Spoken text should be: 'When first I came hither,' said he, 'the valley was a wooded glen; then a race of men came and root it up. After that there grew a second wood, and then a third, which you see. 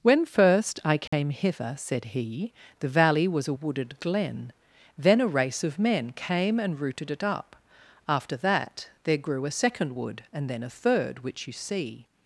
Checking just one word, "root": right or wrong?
wrong